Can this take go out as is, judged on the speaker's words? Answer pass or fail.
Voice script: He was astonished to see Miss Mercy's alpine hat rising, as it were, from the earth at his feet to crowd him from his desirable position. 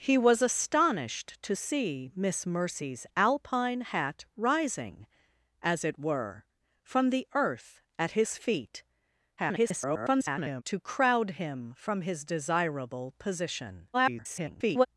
fail